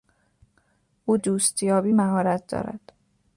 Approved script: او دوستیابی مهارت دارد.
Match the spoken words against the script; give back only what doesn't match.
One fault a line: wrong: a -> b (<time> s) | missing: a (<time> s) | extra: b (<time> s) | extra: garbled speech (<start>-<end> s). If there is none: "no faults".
no faults